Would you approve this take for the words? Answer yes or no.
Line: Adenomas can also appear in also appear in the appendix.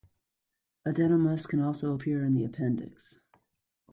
no